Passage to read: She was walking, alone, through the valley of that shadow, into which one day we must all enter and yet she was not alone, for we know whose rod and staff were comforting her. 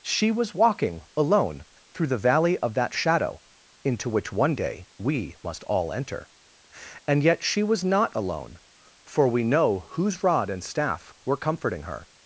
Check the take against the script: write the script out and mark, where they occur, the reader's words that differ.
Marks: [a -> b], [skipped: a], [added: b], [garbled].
She was walking, alone, through the valley of that shadow, into which one day we must all enter and yet she was not alone, for we know whose rod and staff were comforting her.